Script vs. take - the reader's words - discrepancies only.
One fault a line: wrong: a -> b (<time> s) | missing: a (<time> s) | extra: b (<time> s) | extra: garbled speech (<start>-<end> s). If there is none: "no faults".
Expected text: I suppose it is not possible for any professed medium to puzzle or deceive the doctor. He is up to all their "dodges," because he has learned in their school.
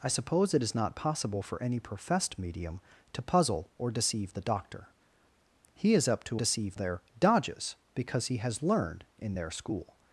wrong: all -> deceive (6.3 s)